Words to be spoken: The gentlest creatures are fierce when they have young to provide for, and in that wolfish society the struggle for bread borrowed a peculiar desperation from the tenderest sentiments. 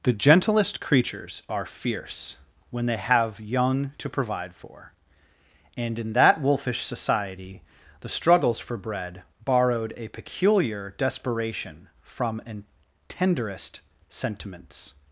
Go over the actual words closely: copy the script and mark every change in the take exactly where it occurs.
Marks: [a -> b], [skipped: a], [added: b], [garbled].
The gentlest creatures are fierce when they have young to provide for, and in that wolfish society the [struggle -> struggles] for bread borrowed a peculiar desperation from [the -> an] tenderest sentiments.